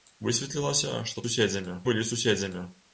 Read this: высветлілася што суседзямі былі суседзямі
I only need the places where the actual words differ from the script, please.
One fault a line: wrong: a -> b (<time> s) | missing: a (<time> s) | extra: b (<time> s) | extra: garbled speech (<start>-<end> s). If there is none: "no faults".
no faults